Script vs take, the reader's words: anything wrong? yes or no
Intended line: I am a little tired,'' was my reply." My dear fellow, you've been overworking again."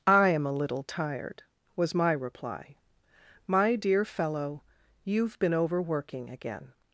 no